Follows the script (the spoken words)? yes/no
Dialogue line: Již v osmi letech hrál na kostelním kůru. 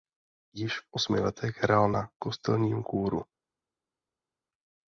yes